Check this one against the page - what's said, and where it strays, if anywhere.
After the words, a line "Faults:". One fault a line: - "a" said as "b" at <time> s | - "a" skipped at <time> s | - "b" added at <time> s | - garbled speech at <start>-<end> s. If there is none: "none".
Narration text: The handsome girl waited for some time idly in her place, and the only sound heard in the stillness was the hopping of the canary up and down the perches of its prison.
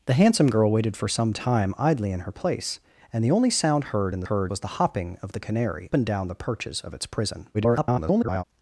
The handsome girl waited for some time idly in her place, and the only sound heard in the heard was the hopping of the canary and down the perches of its prison. [garbled]
Faults:
- "stillness" said as "heard" at 4.2 s
- "up" skipped at 5.9 s
- garbled speech at 7.5-8.4 s